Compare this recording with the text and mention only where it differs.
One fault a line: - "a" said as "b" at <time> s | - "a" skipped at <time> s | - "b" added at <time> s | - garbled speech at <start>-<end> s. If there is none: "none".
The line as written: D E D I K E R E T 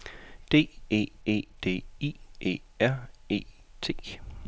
- "E" added at 1.2 s
- "K" skipped at 2.1 s